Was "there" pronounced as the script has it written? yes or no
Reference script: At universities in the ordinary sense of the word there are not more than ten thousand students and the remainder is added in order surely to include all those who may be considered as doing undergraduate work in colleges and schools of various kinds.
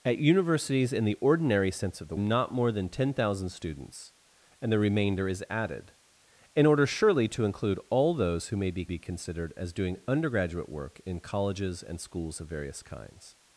no